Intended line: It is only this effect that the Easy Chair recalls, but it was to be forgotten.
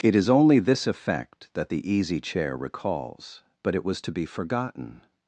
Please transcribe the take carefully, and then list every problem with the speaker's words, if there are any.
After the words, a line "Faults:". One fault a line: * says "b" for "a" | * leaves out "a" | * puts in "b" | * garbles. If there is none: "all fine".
It is only this effect that the Easy Chair recalls, but it was to be forgotten.
Faults:
all fine